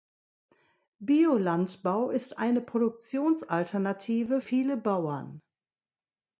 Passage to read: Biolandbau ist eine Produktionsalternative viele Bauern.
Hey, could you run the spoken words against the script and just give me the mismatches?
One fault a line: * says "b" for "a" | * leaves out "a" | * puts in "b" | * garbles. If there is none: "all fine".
all fine